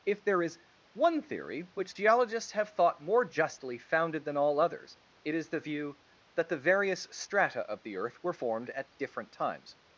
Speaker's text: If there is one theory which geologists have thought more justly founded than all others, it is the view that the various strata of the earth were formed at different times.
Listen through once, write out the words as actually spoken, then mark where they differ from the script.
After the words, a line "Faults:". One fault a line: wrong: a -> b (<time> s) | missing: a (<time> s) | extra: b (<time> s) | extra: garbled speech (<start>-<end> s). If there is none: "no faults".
If there is one theory which geologists have thought more justly founded than all others, it is the view that the various strata of the earth were formed at different times.
Faults:
no faults